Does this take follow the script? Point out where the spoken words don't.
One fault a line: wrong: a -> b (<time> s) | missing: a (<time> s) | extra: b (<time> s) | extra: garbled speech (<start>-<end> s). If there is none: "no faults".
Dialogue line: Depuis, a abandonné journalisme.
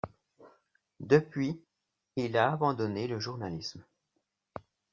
extra: il (2.1 s)
extra: le (3.1 s)